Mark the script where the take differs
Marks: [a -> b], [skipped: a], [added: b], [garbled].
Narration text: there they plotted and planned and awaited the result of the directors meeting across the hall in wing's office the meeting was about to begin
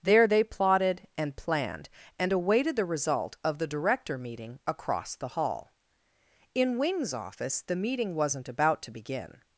there they plotted and planned and awaited the result of the [directors -> director] meeting across the hall in wing's office the meeting [was -> wasn't] about to begin